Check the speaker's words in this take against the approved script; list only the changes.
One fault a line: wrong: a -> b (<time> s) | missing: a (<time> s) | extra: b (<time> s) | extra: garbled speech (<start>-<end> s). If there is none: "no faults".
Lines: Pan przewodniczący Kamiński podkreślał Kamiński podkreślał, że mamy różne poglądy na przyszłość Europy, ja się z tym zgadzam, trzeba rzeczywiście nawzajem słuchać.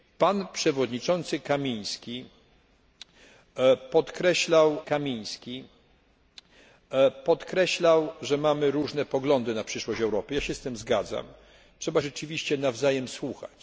no faults